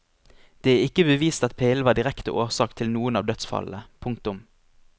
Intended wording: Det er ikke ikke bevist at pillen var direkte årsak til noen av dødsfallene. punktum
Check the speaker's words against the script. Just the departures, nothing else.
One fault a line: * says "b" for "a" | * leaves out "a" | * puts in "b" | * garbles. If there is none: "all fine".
* leaves out "ikke"